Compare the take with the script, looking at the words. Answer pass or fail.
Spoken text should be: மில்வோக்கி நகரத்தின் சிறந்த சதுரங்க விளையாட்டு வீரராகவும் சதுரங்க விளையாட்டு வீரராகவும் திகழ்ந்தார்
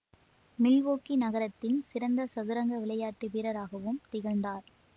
fail